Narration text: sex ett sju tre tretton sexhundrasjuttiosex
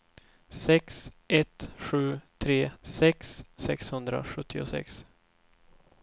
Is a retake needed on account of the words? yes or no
yes